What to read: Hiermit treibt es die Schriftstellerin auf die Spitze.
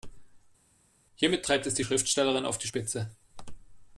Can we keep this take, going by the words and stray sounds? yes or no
yes